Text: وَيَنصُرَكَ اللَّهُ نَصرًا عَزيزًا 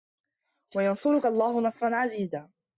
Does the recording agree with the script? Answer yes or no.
yes